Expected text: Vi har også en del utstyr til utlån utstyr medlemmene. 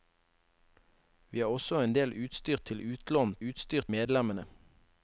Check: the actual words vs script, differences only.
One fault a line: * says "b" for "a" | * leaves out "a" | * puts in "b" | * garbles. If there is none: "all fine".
all fine